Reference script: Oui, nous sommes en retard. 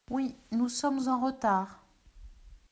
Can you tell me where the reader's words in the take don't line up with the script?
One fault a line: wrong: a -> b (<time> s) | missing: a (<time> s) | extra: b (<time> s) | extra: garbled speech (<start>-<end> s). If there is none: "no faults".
no faults